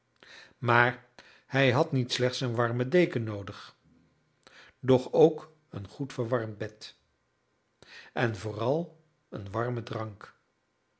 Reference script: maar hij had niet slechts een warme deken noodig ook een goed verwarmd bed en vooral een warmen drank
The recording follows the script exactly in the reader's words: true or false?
false